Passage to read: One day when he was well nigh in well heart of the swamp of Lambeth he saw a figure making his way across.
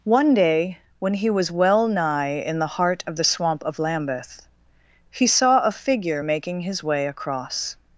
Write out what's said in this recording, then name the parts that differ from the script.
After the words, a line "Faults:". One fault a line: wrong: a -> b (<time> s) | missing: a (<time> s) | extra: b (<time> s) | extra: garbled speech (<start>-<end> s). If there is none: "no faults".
One day when he was well nigh in the heart of the swamp of Lambeth he saw a figure making his way across.
Faults:
wrong: well -> the (2.6 s)